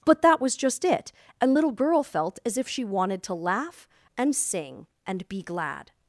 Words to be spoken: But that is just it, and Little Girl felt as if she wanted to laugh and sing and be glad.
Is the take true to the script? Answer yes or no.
no